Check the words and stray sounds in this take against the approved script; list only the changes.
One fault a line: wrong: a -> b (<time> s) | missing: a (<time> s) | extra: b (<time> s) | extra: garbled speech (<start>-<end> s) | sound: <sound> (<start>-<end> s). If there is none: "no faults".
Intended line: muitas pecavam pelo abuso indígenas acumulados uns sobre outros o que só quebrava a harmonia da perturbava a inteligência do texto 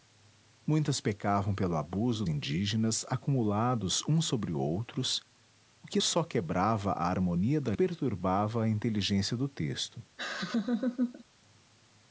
sound: laugh (10.2-11.2 s)